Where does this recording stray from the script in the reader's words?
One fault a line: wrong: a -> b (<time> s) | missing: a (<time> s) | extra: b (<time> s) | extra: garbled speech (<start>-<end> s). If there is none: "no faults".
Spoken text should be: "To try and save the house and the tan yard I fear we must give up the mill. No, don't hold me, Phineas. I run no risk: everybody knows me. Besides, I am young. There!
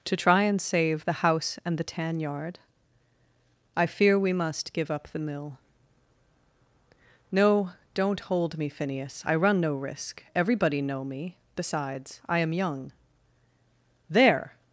wrong: knows -> know (10.8 s)